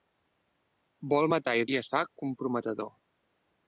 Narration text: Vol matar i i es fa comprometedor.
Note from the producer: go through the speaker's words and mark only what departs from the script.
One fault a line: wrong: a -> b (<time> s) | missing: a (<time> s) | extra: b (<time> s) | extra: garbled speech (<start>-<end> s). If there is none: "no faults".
no faults